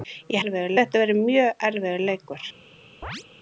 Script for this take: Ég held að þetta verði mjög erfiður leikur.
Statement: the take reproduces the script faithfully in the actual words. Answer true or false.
false